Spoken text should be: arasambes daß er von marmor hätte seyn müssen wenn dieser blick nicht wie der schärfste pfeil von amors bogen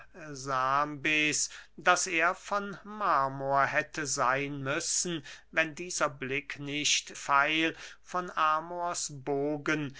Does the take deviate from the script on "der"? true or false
true